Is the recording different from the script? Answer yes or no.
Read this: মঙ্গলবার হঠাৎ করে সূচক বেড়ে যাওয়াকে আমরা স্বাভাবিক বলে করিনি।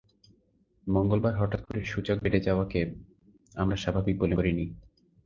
no